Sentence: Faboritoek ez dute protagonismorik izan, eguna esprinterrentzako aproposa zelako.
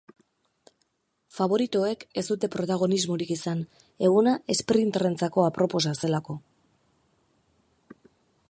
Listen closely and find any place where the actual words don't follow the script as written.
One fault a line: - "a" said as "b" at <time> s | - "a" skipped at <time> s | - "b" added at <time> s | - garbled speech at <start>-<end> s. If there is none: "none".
none